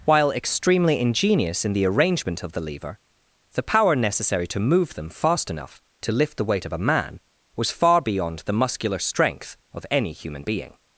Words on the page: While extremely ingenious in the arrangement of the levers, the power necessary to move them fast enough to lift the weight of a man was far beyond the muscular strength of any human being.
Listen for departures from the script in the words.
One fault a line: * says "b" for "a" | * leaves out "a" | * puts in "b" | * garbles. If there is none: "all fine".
* says "lever" for "levers"